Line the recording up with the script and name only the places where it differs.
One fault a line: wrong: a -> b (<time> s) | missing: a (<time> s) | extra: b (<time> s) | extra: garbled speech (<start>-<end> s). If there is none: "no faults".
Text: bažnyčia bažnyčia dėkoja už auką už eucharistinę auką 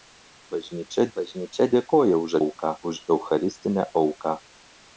no faults